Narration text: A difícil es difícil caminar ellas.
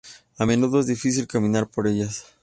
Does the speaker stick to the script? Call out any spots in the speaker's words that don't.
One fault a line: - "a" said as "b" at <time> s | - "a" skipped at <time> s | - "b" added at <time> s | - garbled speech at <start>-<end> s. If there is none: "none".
- "difícil" said as "menudo" at 0.4 s
- "por" added at 1.7 s